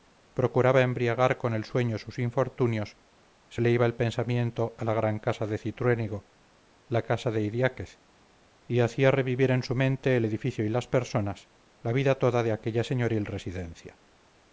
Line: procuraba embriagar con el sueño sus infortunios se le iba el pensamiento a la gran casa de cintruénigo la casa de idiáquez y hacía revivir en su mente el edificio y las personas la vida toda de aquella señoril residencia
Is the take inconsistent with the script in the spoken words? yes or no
no